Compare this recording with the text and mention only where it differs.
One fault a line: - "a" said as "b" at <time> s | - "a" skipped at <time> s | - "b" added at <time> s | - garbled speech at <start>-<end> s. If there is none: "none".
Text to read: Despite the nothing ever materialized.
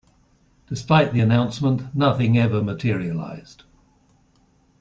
- "announcement" added at 1.2 s